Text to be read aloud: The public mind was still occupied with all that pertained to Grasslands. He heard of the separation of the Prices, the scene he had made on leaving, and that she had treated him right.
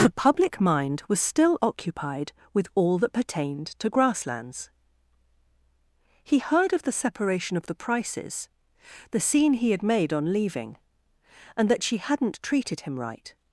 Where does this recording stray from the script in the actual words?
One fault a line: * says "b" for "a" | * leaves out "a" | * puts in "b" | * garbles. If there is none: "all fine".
* says "hadn't" for "had"